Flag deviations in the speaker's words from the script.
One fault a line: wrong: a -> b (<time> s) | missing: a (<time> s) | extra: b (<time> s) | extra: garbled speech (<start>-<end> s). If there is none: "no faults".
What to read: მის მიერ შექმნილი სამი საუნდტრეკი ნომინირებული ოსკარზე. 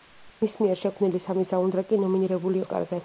no faults